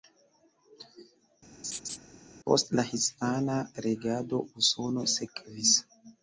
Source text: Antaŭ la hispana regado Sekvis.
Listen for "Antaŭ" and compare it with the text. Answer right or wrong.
wrong